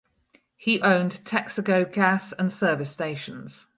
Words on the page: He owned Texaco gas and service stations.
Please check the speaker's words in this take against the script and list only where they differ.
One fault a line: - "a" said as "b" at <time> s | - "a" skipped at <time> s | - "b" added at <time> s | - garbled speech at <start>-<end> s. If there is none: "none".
none